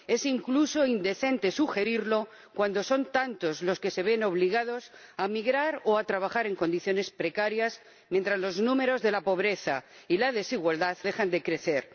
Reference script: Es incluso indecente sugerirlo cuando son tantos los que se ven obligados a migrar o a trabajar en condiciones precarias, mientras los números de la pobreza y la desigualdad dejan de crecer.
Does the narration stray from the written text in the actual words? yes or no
no